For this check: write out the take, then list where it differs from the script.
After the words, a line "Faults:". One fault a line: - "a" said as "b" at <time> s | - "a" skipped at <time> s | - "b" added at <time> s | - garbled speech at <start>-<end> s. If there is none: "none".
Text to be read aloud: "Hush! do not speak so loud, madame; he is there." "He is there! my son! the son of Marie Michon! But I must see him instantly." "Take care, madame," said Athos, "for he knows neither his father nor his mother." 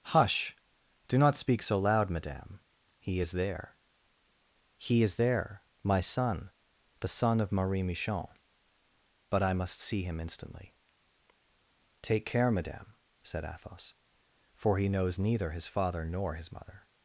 "Hush! do not speak so loud, madame; he is there." "He is there! my son! the son of Marie Michon! But I must see him instantly." "Take care, madame," said Athos, "for he knows neither his father nor his mother."
Faults:
none